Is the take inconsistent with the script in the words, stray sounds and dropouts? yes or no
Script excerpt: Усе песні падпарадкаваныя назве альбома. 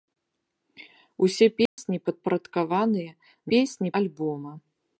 yes